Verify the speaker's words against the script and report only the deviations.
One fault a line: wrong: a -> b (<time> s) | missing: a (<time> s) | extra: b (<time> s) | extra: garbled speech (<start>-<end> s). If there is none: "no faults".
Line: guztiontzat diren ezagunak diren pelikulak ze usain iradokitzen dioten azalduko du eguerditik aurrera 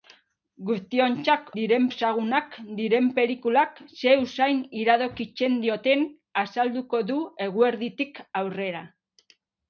no faults